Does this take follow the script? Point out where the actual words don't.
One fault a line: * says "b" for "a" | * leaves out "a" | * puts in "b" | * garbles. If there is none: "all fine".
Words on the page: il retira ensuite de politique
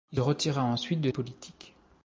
all fine